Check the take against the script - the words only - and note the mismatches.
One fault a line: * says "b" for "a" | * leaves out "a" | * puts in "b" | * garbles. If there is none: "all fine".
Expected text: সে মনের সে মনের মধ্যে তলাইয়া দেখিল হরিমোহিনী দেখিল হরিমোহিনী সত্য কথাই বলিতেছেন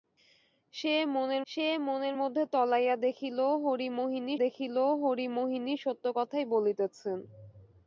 all fine